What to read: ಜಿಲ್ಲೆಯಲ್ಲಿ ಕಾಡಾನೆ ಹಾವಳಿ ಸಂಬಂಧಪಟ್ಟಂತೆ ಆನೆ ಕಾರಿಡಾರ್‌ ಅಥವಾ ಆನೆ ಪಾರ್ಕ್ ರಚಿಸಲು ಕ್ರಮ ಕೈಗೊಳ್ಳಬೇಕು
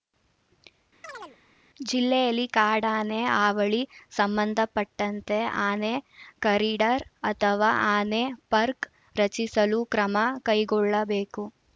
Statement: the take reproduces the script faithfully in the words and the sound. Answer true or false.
false